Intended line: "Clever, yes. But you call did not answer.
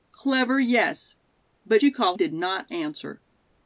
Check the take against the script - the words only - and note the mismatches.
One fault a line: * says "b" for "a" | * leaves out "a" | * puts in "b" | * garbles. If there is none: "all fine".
all fine